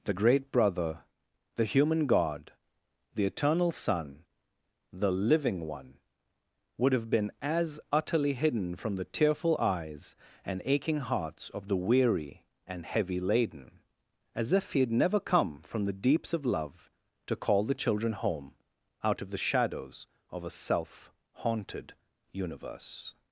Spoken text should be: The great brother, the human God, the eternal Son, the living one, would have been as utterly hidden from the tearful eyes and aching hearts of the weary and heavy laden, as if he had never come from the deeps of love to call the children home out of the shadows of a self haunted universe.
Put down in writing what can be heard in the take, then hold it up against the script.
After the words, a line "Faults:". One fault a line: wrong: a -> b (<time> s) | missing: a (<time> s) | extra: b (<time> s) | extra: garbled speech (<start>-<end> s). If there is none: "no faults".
The great brother, the human God, the eternal Son, the living one, would have been as utterly hidden from the tearful eyes and aching hearts of the weary and heavy laden, as if he had never come from the deeps of love to call the children home out of the shadows of a self haunted universe.
Faults:
no faults